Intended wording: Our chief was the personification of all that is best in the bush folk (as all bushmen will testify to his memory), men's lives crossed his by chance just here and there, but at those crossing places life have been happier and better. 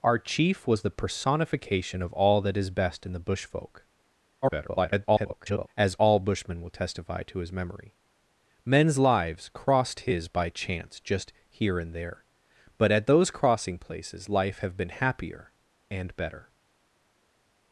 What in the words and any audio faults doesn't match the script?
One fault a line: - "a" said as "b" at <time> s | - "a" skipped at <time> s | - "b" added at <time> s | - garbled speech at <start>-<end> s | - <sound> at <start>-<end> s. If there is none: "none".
- garbled speech at 4.4-5.7 s